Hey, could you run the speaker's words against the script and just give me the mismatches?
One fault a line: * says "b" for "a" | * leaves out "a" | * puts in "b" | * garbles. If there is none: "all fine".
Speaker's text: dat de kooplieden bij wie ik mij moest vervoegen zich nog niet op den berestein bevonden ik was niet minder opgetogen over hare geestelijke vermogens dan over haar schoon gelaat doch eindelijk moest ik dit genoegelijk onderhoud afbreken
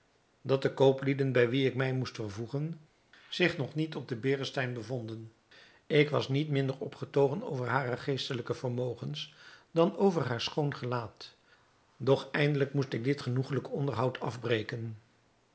all fine